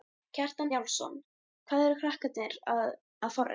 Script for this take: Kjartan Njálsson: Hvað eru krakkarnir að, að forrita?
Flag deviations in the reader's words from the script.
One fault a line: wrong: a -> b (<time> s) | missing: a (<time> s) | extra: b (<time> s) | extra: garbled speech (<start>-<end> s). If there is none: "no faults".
no faults